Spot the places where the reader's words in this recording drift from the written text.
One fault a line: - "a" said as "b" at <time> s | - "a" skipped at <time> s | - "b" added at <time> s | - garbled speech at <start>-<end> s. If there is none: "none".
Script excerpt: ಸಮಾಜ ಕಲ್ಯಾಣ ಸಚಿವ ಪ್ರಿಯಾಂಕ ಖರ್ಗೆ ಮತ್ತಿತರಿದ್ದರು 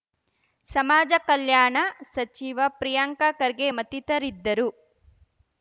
none